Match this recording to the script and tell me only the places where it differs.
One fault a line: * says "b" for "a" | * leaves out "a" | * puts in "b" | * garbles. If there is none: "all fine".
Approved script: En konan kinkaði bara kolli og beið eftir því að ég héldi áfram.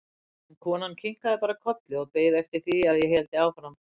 all fine